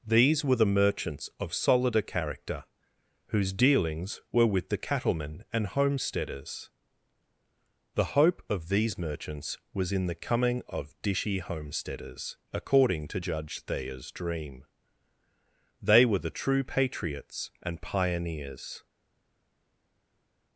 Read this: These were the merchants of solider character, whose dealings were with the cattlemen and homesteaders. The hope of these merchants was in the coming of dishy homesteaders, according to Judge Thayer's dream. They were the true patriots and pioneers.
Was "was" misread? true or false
false